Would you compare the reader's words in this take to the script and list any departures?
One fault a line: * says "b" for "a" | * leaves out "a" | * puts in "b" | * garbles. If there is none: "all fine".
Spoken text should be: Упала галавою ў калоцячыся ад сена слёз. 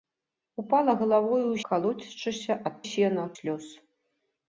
all fine